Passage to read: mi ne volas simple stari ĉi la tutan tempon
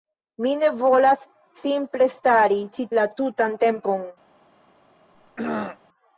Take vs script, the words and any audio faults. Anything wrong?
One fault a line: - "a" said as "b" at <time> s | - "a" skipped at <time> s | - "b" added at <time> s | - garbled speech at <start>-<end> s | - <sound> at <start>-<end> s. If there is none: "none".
- throat clearing at 5.1-5.8 s